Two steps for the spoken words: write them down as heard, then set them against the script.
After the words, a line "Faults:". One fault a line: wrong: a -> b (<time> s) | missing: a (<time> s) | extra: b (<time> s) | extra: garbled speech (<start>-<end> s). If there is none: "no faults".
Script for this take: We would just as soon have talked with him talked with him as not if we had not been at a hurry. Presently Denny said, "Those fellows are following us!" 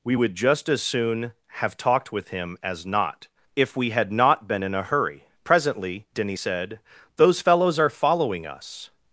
We would just as soon have talked with him as not if we had not been in a hurry. Presently Denny said, "Those fellows are following us!"
Faults:
missing: talked with him (2.6 s)
wrong: at -> in (4.6 s)